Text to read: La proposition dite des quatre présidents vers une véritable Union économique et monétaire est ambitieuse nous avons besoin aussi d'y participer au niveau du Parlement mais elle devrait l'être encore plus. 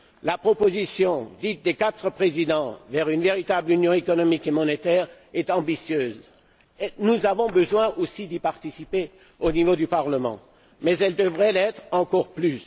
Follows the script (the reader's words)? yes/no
yes